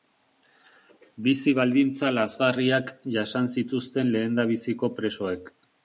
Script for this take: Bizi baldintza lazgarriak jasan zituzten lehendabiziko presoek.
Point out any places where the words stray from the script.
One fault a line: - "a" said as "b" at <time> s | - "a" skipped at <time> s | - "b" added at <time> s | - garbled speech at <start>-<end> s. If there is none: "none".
none